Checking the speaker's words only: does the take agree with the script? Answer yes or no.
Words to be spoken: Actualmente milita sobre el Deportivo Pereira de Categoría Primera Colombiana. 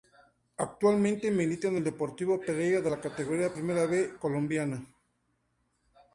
no